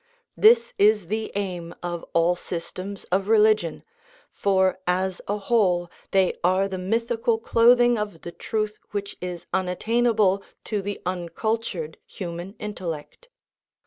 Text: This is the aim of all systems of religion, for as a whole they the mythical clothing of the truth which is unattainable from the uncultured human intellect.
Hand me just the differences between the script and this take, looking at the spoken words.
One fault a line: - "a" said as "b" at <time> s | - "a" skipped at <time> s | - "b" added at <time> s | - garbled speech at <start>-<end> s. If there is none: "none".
- "are" added at 6.4 s
- "from" said as "to" at 10.6 s